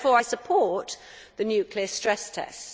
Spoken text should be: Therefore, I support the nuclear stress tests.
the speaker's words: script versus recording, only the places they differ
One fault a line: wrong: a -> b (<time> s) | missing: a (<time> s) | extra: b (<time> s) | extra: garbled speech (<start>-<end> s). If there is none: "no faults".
no faults